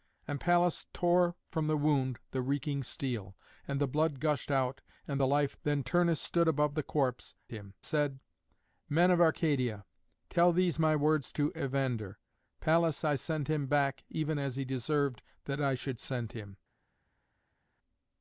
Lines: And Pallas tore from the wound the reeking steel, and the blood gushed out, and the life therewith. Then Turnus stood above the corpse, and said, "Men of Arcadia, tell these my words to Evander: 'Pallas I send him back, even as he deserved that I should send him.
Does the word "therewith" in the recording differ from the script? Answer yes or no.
yes